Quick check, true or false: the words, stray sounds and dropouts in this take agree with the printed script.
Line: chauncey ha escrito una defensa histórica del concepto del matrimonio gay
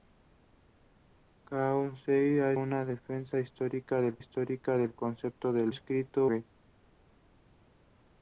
false